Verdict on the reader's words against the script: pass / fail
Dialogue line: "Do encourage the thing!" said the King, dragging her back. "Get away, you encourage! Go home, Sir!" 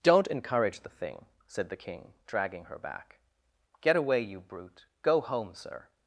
fail